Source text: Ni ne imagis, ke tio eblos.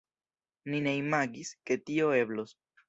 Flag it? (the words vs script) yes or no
no